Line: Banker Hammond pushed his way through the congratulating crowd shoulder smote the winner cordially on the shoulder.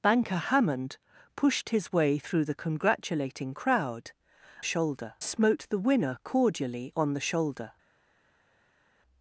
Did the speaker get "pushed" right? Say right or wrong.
right